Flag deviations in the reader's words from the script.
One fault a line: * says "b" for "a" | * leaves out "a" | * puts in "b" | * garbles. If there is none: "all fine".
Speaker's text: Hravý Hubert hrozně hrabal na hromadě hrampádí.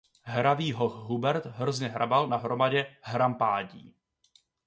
* puts in "hoch"